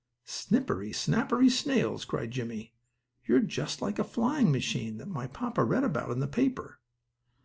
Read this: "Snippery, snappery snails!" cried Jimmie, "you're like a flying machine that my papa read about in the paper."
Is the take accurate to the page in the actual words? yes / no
no